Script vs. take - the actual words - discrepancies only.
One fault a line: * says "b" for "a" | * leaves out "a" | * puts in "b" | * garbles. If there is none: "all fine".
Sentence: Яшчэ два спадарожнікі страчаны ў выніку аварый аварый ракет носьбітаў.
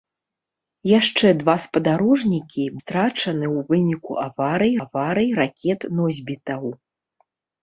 all fine